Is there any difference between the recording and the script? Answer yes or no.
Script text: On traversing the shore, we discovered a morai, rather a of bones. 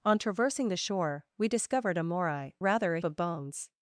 no